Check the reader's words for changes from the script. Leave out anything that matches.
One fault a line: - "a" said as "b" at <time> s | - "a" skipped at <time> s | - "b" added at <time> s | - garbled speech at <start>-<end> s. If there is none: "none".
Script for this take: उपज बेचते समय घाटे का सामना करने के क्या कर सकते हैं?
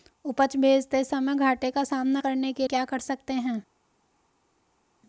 none